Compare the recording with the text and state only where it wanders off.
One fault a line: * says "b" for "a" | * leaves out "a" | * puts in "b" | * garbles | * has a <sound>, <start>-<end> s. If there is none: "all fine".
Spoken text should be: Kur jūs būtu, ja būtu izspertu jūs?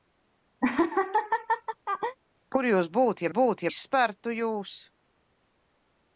* has a laugh, 0.6-2.2 s